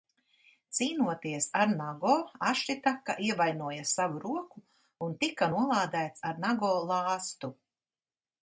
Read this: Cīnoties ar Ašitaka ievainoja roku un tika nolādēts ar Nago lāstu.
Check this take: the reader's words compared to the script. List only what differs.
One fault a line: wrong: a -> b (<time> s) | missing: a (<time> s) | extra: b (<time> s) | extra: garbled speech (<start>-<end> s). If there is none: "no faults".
extra: Nago (1.8 s)
extra: savu (3.9 s)